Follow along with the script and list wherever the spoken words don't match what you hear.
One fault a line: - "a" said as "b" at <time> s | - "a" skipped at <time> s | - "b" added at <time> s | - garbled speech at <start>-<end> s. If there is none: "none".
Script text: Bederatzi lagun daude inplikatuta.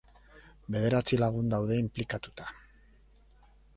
none